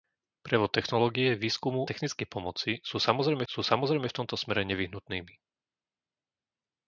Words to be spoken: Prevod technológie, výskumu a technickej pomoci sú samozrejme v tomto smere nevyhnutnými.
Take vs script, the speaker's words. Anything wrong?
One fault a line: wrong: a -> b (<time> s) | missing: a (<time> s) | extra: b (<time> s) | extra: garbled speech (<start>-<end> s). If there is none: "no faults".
missing: a (1.9 s)
extra: sú samozrejme (3.4 s)